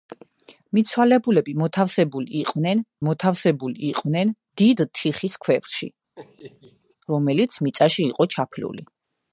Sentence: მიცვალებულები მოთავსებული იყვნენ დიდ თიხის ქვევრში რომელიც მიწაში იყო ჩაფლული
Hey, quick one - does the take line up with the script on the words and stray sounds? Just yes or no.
no